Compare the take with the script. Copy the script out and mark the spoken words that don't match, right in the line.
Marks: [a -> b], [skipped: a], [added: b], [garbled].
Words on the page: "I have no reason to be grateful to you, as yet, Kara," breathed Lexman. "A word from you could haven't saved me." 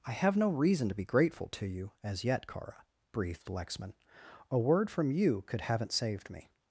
"I have no reason to be grateful to you, as yet, Kara," breathed Lexman. "A word from you could haven't saved me."